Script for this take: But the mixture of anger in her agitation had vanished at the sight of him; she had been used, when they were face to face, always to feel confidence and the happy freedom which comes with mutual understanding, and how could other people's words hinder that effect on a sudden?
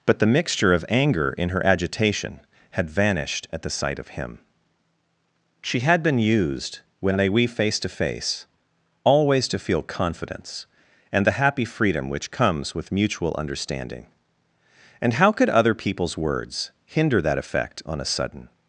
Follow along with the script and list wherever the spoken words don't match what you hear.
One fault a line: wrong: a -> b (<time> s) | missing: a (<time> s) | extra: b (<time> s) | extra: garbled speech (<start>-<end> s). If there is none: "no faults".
wrong: were -> we (7.3 s)